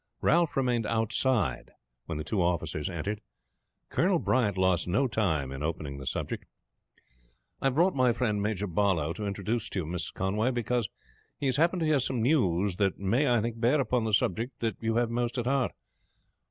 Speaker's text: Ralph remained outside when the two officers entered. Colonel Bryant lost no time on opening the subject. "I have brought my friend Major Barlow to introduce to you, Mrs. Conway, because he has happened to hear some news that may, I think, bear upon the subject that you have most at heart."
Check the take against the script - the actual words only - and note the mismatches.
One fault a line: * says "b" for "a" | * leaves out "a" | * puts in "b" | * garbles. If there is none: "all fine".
* says "in" for "on"